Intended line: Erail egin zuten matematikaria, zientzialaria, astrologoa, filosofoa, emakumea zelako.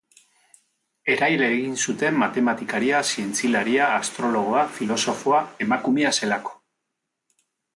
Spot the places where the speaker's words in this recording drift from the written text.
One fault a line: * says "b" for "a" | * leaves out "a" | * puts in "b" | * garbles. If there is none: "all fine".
all fine